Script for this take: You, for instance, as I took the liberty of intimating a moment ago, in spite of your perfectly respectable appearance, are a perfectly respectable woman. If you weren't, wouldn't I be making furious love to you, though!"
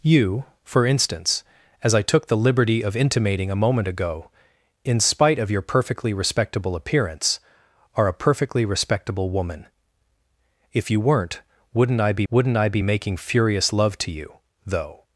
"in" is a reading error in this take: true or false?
false